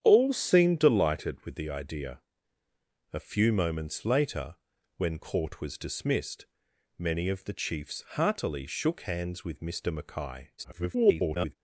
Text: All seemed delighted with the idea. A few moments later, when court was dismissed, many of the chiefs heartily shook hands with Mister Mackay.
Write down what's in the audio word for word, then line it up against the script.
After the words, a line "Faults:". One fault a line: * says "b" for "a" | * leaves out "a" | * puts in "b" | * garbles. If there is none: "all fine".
All seemed delighted with the idea. A few moments later, when court was dismissed, many of the chiefs heartily shook hands with Mister Mackay. [garbled]
Faults:
* garbles